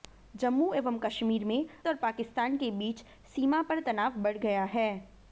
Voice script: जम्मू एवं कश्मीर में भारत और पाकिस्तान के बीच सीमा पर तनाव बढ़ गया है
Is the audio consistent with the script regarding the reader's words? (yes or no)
no